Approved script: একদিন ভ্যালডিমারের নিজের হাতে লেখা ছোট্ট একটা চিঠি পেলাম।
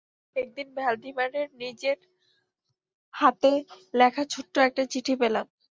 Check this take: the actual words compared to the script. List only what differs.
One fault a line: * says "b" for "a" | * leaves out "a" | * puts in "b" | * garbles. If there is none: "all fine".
all fine